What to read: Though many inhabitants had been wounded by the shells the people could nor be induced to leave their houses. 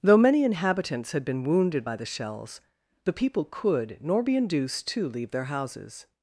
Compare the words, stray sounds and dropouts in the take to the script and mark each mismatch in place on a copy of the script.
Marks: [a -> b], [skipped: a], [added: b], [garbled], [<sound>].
Though many inhabitants had been wounded by the shells the people could nor be induced to leave their houses.